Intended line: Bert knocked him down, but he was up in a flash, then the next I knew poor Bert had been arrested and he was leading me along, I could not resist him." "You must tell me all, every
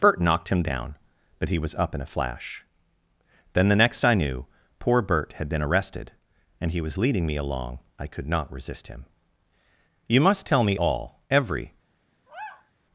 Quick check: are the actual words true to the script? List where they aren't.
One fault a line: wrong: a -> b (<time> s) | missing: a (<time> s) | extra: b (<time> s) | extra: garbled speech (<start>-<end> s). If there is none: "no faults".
no faults